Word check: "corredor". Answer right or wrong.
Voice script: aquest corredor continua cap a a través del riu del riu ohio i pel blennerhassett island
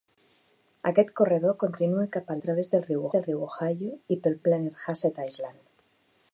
right